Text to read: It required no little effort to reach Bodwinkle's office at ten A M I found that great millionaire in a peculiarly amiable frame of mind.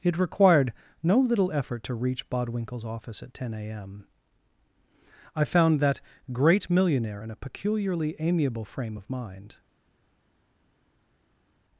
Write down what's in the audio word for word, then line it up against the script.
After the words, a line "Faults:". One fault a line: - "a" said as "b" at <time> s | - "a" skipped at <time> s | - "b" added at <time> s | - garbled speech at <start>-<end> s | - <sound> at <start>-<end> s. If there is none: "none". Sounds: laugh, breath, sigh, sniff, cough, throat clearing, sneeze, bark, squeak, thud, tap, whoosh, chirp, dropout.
It required no little effort to reach Bodwinkle's office at ten A M I found that great millionaire in a peculiarly amiable frame of mind.
Faults:
none